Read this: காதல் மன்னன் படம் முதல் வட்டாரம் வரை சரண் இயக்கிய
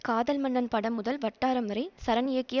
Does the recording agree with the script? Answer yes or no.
yes